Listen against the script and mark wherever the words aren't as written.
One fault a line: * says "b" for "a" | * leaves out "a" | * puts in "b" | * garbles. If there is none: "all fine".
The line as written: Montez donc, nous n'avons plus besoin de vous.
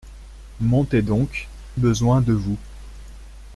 * leaves out "nous n'avons plus"